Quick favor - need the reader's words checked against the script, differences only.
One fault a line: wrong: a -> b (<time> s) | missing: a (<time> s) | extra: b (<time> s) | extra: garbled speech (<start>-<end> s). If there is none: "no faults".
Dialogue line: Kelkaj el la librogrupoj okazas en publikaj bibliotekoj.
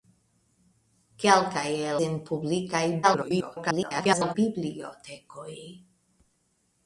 missing: la librogrupoj okazas (2.0 s)
extra: garbled speech (3.0-4.4 s)